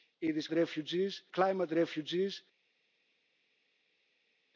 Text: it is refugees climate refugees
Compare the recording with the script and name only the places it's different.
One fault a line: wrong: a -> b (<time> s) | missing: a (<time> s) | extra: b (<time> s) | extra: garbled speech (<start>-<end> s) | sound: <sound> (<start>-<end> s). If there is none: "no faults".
no faults